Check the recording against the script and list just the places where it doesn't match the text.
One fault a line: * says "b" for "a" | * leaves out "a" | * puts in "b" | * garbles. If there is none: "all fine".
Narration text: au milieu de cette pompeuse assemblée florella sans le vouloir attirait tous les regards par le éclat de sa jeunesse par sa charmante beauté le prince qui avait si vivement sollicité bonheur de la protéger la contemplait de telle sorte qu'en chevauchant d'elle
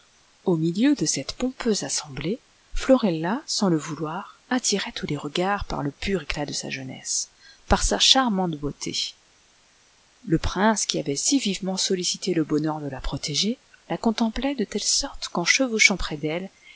* puts in "pur"
* puts in "le"
* puts in "près"